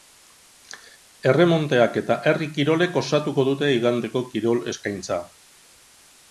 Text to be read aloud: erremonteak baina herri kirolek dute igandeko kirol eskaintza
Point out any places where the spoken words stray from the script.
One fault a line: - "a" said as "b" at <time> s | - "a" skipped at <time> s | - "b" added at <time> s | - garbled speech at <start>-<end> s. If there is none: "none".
- "baina" said as "eta" at 2.0 s
- "osatuko" added at 3.0 s